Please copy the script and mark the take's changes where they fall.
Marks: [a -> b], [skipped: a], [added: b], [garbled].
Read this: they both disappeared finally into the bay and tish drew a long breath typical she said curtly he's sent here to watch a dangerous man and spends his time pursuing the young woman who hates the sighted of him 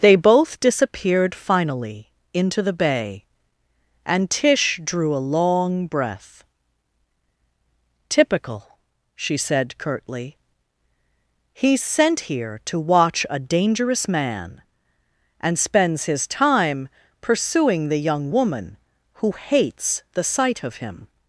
they both disappeared finally into the bay and tish drew a long breath typical she said curtly he's sent here to watch a dangerous man and spends his time pursuing the young woman who hates the [sighted -> sight] of him